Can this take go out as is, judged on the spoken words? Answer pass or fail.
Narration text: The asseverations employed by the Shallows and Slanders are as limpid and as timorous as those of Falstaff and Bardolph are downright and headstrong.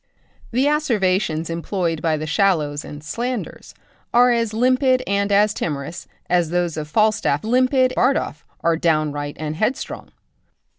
fail